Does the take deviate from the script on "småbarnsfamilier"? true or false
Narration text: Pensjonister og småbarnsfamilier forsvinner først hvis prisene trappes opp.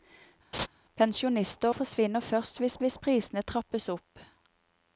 true